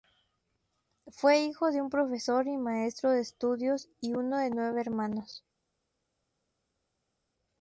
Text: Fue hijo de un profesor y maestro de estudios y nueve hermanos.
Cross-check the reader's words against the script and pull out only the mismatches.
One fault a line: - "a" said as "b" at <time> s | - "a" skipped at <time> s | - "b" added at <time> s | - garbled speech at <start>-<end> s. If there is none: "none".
- "uno de" added at 4.1 s